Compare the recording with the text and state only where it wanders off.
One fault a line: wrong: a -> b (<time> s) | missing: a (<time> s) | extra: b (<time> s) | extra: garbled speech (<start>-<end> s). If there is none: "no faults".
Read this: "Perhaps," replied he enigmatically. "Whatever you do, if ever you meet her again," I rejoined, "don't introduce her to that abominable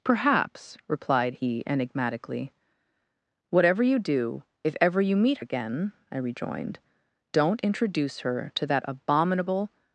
missing: her (5.4 s)